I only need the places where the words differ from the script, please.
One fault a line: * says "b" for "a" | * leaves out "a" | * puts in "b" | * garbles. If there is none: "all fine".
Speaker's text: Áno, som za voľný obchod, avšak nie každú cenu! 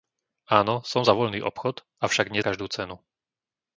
all fine